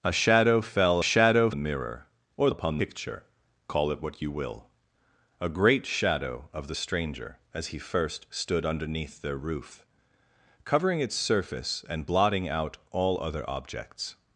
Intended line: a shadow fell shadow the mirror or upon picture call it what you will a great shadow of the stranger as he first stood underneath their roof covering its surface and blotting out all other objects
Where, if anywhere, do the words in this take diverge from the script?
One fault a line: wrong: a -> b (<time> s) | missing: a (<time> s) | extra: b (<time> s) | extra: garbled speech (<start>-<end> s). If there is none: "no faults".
no faults